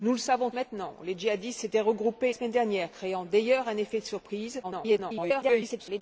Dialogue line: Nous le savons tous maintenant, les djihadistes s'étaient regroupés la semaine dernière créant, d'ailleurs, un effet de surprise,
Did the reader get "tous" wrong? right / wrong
wrong